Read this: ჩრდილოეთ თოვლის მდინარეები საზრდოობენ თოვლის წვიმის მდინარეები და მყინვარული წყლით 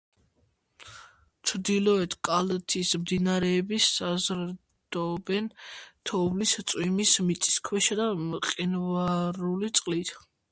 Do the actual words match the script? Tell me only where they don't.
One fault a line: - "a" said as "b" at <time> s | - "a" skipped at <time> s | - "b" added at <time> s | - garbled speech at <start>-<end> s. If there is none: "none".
- "თოვლის" said as "კალთის" at 2.3 s
- "მდინარეები" said as "მიწისქვეშა" at 7.3 s